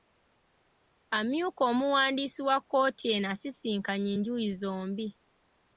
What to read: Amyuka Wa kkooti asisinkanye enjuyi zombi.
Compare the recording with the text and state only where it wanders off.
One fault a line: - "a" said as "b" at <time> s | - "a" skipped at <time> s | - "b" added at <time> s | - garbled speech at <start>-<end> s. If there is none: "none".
- "Omuwandiisi" added at 1.7 s
- "eno" added at 3.1 s